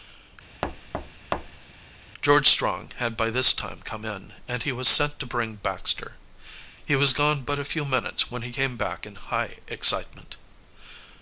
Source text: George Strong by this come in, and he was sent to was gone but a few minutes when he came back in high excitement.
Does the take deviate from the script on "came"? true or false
false